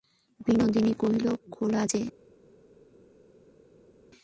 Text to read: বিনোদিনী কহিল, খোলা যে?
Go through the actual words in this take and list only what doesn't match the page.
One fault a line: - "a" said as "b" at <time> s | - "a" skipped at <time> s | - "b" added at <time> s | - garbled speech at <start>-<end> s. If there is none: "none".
none